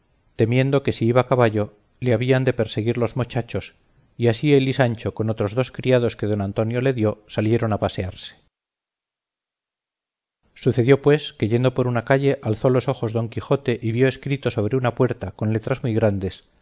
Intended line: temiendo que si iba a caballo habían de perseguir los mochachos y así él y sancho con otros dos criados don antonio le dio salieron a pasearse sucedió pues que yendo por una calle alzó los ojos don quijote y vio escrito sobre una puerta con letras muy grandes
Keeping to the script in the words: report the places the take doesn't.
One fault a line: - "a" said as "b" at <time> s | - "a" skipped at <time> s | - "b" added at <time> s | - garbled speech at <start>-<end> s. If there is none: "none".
- "le" added at 2.0 s
- "que" added at 6.2 s